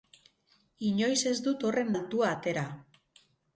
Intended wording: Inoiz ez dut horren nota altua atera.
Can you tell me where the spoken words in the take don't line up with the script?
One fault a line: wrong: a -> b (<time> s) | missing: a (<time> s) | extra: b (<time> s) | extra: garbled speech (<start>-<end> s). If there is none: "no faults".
missing: nota (1.9 s)